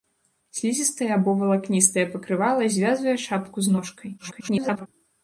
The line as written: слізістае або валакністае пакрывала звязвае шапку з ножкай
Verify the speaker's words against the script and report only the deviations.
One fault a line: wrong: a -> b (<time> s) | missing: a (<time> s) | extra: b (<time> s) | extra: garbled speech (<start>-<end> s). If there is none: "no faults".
extra: garbled speech (4.2-4.9 s)